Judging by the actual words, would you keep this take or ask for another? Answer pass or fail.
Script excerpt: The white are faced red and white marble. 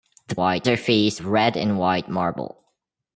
pass